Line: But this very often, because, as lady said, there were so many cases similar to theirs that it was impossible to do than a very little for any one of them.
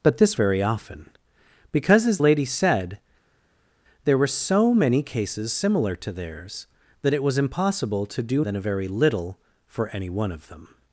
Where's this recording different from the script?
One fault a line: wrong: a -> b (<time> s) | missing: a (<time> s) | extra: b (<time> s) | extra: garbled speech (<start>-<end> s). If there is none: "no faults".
no faults